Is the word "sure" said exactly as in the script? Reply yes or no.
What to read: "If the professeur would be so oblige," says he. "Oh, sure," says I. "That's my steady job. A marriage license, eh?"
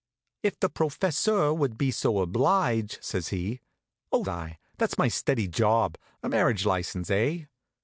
no